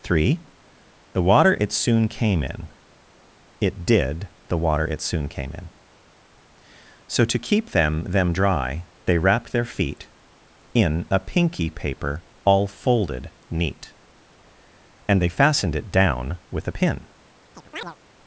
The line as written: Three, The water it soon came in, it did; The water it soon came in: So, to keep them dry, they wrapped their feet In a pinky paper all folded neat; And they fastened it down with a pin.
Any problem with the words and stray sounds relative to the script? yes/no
yes